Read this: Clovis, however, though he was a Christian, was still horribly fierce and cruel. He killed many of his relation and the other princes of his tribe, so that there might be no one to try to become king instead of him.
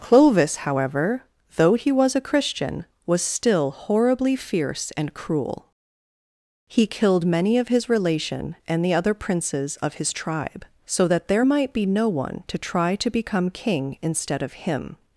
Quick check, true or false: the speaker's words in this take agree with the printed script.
true